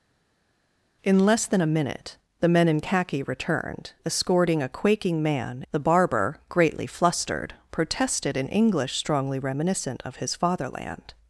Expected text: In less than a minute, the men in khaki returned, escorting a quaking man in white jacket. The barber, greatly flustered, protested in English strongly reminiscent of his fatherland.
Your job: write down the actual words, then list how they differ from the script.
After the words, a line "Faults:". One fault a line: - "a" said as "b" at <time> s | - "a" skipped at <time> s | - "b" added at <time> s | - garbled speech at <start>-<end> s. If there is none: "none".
In less than a minute, the men in khaki returned, escorting a quaking man. The barber, greatly flustered, protested in English strongly reminiscent of his fatherland.
Faults:
- "in white jacket" skipped at 5.6 s